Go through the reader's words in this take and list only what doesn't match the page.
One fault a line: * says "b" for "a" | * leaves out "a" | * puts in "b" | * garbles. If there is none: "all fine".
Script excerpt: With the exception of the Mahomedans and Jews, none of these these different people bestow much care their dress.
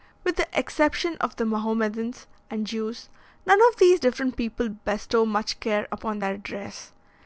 * leaves out "these"
* puts in "upon"